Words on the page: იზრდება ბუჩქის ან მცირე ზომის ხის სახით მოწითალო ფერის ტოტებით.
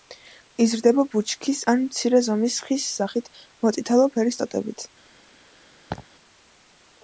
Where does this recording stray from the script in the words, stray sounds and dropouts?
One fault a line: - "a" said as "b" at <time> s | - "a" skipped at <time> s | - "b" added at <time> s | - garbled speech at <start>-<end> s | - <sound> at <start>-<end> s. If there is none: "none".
- laugh at 5.9-6.1 s